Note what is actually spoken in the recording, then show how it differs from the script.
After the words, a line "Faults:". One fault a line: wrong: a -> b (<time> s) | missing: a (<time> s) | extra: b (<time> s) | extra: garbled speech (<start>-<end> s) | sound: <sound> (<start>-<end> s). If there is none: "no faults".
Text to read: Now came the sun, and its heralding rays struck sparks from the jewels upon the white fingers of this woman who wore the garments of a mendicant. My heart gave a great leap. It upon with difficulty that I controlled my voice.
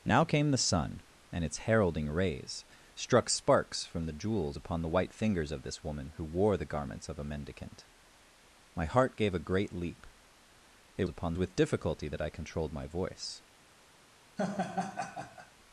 Now came the sun, and its heralding rays struck sparks from the jewels upon the white fingers of this woman who wore the garments of a mendicant. My heart gave a great leap. It upon with difficulty that I controlled my voice.
Faults:
sound: laugh (14.4-15.5 s)